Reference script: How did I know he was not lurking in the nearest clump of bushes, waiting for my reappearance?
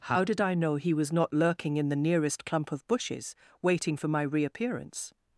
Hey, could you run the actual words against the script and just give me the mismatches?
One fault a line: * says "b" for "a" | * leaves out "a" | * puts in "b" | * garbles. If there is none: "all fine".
all fine